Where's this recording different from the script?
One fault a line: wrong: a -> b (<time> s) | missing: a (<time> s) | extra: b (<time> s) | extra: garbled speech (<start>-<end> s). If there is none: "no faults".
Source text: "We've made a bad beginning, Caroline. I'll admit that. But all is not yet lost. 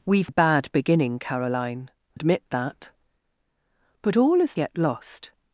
missing: made (0.3 s)
missing: I'll (1.9 s)
missing: not (4.6 s)